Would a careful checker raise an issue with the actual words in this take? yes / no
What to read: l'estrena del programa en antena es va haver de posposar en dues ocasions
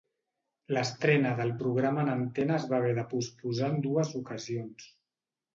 no